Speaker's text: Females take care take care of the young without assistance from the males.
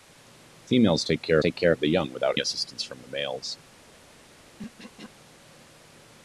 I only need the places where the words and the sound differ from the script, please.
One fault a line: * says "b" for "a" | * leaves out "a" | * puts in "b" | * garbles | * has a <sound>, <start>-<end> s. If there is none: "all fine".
* has a throat clearing, 4.6-5.1 s